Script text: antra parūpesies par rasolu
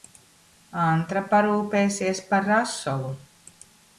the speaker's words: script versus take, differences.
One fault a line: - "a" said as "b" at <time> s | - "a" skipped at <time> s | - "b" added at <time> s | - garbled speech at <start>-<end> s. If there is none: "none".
none